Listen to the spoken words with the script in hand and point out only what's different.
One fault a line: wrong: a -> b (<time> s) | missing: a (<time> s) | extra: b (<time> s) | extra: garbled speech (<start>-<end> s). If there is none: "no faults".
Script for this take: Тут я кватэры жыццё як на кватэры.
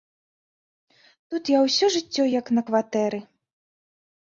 wrong: кватэры -> ўсё (1.7 s)